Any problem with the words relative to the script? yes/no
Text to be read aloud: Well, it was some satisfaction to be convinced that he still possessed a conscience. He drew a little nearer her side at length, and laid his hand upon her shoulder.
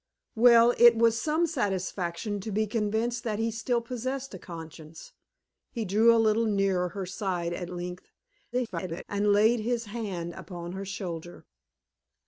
yes